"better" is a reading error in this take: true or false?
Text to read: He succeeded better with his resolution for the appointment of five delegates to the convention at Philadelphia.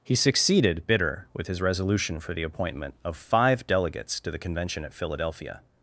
true